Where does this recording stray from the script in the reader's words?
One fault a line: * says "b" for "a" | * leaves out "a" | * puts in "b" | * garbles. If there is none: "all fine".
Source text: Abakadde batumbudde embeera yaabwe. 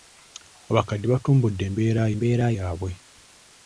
* puts in "embeera"